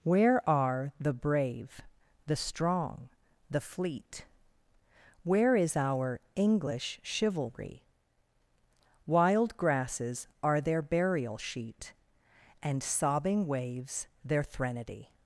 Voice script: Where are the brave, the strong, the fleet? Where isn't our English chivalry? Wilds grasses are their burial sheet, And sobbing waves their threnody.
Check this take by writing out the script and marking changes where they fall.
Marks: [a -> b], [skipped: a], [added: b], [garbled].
Where are the brave, the strong, the fleet? Where [isn't -> is] our English chivalry? [Wilds -> Wild] grasses are their burial sheet, And sobbing waves their threnody.